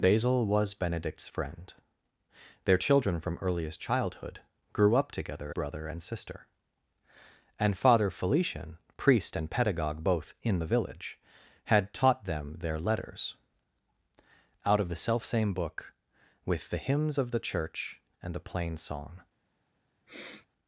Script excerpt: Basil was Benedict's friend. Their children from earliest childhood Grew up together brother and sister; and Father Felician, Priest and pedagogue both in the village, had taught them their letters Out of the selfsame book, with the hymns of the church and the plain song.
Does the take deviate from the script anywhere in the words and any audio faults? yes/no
yes